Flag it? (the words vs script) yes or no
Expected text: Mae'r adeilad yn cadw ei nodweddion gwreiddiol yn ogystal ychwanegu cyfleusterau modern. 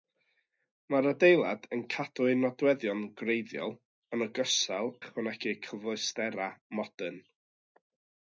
no